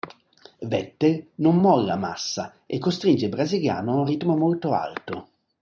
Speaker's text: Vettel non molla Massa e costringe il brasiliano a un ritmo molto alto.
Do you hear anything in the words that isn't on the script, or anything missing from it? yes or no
no